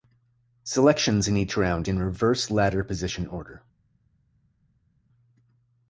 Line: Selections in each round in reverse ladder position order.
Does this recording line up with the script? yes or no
yes